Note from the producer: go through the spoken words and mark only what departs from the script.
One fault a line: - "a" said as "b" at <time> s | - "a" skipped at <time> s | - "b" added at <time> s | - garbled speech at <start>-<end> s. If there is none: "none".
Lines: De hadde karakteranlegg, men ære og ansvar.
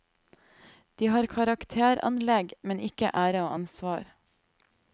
- "hadde" said as "har" at 1.1 s
- "ikke" added at 2.9 s